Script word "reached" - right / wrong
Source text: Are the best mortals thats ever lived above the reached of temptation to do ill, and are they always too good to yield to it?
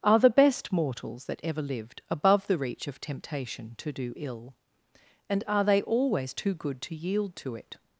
wrong